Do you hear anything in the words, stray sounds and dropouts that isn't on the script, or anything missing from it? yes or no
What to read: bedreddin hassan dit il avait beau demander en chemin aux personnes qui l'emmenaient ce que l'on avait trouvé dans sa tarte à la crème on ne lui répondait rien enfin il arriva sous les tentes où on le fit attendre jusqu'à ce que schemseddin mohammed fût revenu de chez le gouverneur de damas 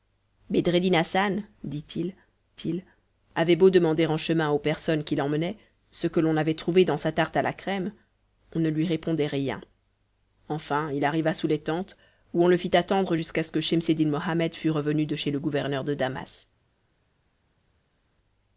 yes